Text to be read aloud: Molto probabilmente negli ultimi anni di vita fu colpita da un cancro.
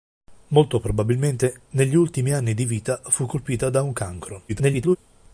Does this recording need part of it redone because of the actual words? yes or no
yes